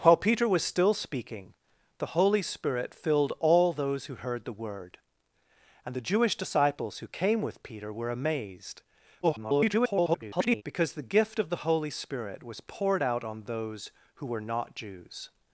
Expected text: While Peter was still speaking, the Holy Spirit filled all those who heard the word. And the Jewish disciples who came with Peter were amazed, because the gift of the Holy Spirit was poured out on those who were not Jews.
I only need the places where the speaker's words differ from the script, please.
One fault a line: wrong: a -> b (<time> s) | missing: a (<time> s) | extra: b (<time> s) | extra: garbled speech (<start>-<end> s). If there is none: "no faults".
extra: garbled speech (9.2-10.6 s)